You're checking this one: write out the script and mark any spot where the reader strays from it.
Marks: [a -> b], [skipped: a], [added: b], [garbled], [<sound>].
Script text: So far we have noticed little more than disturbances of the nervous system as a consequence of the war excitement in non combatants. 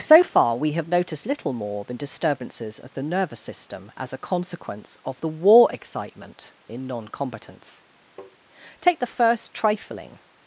So far we have noticed little more than disturbances of the nervous system as a consequence of the war excitement in non combatants. [tap] [added: Take the first trifling]